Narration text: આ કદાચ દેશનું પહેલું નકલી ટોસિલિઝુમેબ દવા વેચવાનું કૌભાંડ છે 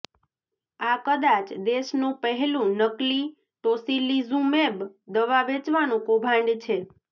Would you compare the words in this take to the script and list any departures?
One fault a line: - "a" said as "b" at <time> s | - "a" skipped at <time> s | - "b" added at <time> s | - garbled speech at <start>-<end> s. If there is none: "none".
none